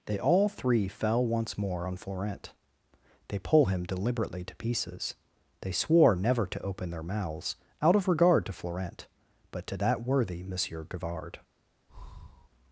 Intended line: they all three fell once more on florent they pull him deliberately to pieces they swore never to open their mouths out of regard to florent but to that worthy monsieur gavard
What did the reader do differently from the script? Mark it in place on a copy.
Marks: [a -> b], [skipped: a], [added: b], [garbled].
they all three fell once more on florent they pull him deliberately to pieces they swore never to open their mouths out of regard to florent but to that worthy monsieur gavard